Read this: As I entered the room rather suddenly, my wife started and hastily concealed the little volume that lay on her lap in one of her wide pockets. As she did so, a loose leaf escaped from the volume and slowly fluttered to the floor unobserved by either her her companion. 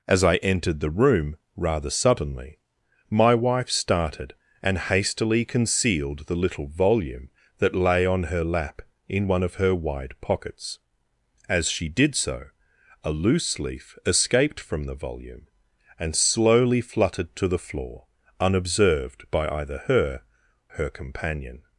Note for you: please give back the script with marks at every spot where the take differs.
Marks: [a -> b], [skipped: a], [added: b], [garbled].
As I entered the room rather suddenly, my wife started and hastily concealed the little volume that lay on her lap in one of her wide pockets. As she did so, a loose leaf escaped from the volume and slowly fluttered to the floor unobserved by either her her companion.